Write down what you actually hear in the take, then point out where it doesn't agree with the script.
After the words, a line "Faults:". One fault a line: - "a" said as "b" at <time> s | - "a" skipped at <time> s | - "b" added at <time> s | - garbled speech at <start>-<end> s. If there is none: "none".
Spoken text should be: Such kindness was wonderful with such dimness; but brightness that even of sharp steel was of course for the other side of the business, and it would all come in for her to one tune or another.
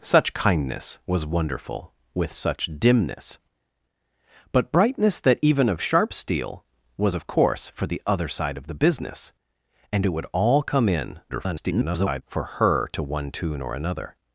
Such kindness was wonderful with such dimness; but brightness that even of sharp steel was of course for the other side of the business, and it would all come in [garbled] for her to one tune or another.
Faults:
- garbled speech at 11.3-12.2 s